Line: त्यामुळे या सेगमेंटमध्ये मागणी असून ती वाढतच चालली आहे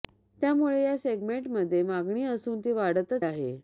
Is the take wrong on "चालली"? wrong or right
wrong